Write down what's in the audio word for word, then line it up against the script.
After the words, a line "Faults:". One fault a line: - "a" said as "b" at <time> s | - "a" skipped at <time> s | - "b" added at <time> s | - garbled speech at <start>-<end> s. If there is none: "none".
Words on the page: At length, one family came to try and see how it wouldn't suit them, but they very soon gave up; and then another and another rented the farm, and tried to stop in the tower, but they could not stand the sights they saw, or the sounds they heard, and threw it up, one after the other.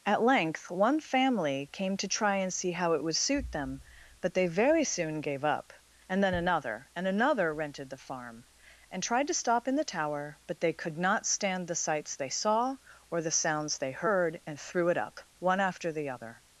At length, one family came to try and see how it would suit them, but they very soon gave up; and then another and another rented the farm, and tried to stop in the tower, but they could not stand the sights they saw, or the sounds they heard, and threw it up, one after the other.
Faults:
- "wouldn't" said as "would" at 3.0 s